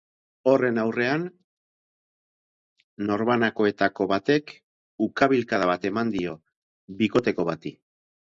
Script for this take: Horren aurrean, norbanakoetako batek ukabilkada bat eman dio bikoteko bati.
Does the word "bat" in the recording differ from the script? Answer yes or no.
no